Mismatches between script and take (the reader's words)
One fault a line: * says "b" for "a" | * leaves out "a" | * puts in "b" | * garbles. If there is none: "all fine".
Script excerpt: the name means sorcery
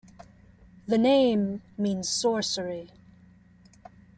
all fine